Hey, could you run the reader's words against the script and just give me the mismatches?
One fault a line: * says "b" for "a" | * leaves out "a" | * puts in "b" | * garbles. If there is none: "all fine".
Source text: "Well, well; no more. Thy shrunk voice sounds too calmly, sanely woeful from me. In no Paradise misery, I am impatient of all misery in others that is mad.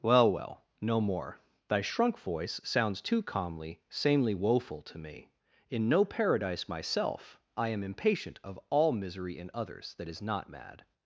* says "to" for "from"
* says "myself" for "misery"
* puts in "not"